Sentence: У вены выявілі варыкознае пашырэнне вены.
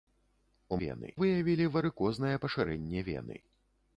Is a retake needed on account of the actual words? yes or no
no